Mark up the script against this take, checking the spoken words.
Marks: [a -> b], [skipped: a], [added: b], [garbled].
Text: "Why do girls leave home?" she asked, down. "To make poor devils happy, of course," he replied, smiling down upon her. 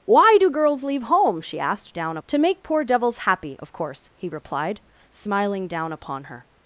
"Why do girls leave home?" she asked, down. "To make poor devils happy, of course," he replied, smiling down upon her.